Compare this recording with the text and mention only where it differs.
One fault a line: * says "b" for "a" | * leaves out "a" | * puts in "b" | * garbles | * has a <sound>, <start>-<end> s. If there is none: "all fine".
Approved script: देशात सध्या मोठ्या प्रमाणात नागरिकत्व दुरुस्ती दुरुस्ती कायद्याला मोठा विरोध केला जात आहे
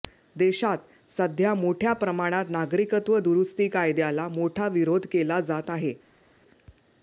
* leaves out "दुरुस्ती"